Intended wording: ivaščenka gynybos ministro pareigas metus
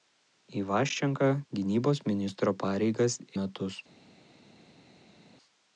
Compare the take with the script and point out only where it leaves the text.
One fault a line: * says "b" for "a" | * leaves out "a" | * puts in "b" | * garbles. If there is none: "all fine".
all fine